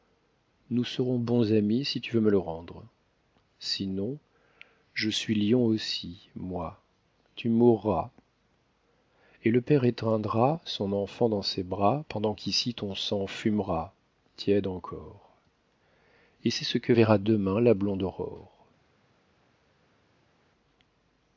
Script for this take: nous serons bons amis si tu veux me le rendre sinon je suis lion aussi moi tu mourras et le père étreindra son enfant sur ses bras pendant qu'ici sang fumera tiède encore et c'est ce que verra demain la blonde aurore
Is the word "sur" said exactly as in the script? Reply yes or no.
no